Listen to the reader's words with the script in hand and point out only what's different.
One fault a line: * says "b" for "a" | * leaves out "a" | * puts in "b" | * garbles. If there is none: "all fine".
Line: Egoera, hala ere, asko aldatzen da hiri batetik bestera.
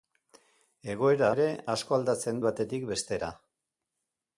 * leaves out "hala"
* leaves out "da hiri"